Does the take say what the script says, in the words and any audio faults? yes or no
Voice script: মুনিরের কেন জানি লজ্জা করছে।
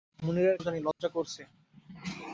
no